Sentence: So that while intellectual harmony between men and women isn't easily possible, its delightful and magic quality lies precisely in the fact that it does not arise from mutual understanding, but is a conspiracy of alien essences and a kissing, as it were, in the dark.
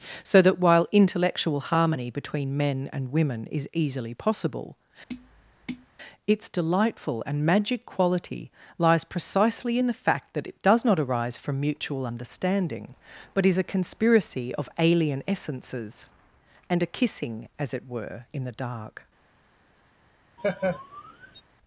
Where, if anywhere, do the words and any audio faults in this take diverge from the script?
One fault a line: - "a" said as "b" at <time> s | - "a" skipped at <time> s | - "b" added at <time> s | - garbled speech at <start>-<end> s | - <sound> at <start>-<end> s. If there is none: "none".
- "isn't" said as "is" at 3.5 s
- tap at 5.1-5.9 s
- laugh at 20.4-21.4 s